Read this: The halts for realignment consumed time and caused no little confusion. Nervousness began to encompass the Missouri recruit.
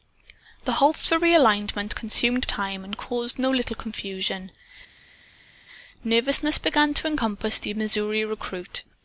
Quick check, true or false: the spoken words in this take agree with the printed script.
true